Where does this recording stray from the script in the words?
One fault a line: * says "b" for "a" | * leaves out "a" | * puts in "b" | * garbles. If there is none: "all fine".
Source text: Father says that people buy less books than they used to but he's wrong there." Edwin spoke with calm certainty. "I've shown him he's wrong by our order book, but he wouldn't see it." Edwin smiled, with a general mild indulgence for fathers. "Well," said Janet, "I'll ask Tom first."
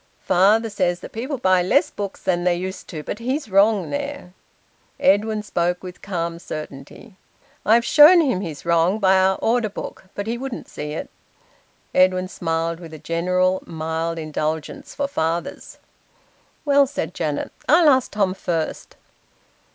all fine